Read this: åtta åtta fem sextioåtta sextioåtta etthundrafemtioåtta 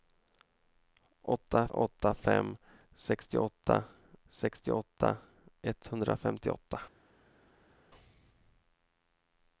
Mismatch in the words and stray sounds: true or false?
false